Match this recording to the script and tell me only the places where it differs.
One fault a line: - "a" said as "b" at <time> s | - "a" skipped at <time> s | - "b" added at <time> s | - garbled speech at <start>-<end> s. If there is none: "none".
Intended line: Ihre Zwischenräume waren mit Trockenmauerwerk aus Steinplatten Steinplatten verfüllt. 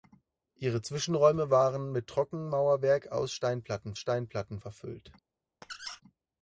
none